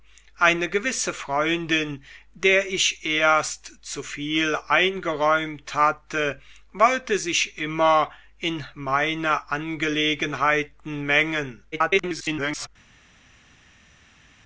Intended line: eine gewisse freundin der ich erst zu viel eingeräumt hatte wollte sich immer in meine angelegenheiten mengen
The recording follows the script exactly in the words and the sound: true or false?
false